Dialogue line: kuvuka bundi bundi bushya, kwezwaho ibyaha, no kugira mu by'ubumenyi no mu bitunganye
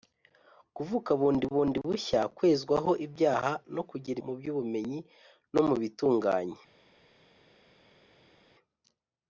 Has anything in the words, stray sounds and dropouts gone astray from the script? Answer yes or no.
no